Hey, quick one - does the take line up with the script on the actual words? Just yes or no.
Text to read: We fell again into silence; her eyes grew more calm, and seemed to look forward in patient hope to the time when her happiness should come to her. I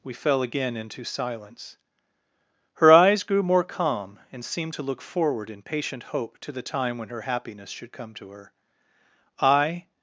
yes